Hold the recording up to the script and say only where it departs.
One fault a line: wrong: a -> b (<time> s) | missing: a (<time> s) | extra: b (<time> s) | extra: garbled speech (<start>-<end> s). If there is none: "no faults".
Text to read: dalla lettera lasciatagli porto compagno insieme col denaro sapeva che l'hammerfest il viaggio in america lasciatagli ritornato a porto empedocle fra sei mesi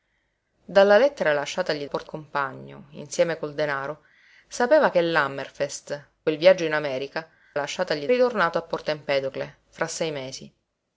no faults